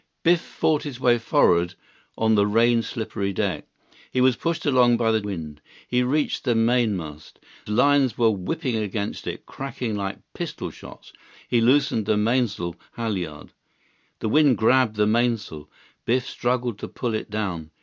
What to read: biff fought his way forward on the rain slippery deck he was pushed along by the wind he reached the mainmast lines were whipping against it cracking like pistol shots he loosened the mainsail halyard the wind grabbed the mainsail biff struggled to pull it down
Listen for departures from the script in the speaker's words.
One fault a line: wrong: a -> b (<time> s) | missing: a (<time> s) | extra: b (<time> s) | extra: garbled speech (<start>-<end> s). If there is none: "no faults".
no faults